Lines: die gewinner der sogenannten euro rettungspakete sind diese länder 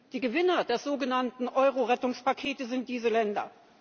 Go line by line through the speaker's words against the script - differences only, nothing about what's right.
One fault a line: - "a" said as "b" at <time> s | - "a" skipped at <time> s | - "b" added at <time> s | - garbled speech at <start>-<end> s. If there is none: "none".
none